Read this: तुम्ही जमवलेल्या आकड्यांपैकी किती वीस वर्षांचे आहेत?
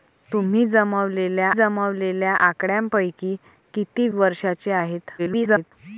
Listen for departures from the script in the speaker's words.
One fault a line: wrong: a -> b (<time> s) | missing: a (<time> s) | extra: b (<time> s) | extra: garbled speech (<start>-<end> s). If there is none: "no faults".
extra: जमवलेल्या (1.5 s)
missing: वीस (4.1 s)
extra: garbled speech (5.2-5.7 s)